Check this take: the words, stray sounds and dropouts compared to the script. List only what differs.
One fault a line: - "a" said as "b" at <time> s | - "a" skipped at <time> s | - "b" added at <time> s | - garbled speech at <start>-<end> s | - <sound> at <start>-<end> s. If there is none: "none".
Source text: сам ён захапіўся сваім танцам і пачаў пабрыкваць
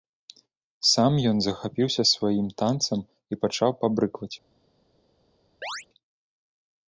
- chirp at 5.6-5.9 s